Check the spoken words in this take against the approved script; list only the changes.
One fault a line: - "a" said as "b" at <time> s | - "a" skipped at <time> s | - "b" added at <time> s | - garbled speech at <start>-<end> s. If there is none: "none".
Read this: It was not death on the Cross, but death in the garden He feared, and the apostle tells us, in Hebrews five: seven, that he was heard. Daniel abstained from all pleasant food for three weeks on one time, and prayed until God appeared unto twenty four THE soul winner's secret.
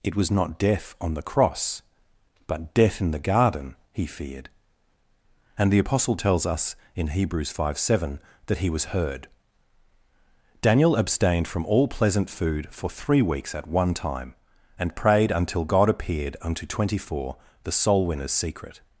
- "on" said as "at" at 13.5 s